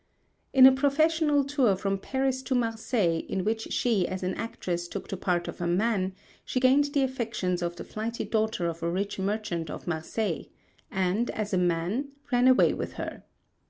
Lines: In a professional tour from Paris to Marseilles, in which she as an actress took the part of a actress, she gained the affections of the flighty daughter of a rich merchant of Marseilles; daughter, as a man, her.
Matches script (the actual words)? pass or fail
fail